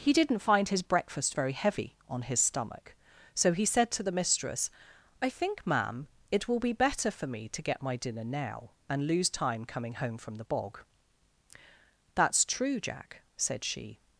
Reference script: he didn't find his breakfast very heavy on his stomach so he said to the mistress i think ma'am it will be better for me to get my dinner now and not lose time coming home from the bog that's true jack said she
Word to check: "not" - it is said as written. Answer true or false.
false